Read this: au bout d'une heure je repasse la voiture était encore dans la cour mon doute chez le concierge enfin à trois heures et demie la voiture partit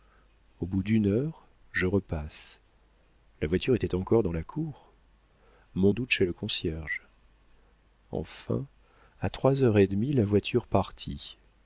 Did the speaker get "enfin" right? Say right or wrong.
right